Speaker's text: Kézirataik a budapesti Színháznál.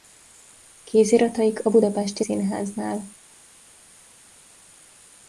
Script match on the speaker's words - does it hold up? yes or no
yes